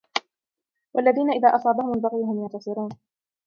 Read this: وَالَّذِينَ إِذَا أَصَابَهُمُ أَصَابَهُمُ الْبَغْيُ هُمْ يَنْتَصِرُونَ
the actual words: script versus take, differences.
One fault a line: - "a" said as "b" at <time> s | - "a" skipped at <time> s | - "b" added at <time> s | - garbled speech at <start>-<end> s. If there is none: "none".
- "أَصَابَهُمُ" skipped at 1.9 s